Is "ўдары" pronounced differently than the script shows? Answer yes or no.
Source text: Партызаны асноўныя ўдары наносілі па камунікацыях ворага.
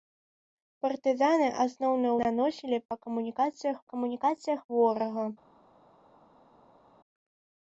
yes